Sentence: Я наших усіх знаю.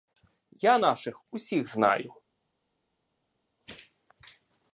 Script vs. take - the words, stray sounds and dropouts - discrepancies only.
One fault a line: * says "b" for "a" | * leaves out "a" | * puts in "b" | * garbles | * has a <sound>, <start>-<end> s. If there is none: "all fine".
all fine